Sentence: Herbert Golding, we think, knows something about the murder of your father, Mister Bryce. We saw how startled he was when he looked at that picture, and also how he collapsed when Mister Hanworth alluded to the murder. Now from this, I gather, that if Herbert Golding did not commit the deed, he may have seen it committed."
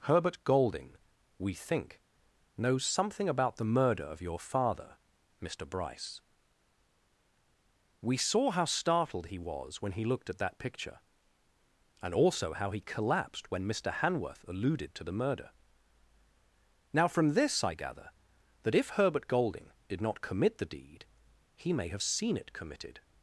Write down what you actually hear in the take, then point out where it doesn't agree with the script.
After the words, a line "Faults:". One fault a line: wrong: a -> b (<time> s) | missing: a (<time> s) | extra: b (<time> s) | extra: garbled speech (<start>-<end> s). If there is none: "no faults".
Herbert Golding, we think, knows something about the murder of your father, Mister Bryce. We saw how startled he was when he looked at that picture, and also how he collapsed when Mister Hanworth alluded to the murder. Now from this, I gather, that if Herbert Golding did not commit the deed, he may have seen it committed."
Faults:
no faults